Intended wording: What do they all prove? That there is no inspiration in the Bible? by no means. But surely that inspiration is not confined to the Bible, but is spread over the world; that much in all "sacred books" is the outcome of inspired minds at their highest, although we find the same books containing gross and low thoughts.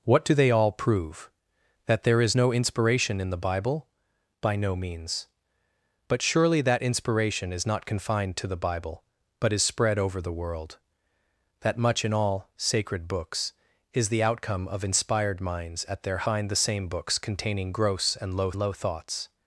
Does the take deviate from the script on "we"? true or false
true